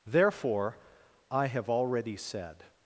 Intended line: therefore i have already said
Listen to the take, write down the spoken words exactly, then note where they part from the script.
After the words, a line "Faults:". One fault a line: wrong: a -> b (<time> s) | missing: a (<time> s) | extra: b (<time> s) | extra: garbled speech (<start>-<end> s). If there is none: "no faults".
therefore i have already said
Faults:
no faults